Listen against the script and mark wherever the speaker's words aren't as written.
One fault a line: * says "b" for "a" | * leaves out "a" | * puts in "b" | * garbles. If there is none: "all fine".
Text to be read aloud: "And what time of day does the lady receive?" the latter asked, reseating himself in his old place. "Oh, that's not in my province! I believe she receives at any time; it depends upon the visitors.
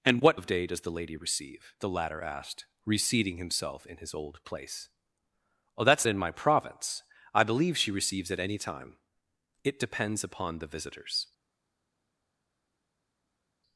* leaves out "time"
* leaves out "not"